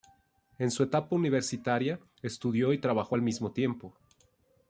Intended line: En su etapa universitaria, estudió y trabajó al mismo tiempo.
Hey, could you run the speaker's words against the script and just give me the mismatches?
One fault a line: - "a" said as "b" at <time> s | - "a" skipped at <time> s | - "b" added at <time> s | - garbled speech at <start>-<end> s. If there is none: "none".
none